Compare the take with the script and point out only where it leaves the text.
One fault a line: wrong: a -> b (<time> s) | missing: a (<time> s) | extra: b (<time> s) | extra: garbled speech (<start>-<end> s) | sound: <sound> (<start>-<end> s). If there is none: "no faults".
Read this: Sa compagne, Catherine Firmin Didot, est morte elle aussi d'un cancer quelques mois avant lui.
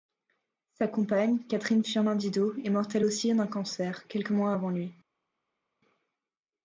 no faults